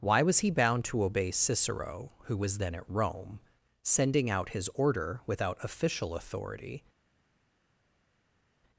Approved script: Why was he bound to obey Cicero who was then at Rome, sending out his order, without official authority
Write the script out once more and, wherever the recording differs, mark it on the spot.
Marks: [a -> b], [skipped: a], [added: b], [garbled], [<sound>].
Why was he bound to obey Cicero who was then at Rome, sending out his order, without official authority